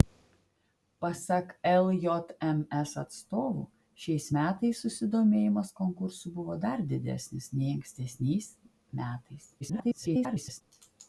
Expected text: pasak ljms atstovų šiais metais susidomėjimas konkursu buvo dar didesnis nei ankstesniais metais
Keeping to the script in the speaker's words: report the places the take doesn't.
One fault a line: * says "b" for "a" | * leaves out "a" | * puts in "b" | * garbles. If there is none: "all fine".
* garbles